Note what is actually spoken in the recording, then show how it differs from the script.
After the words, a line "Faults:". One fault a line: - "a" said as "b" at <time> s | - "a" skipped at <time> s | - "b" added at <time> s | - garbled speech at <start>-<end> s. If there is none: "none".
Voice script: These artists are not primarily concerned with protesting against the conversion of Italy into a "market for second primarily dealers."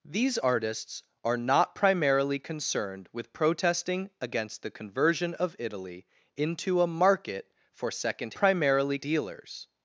These artists are not primarily concerned with protesting against the conversion of Italy into a "market for second primarily dealers."
Faults:
none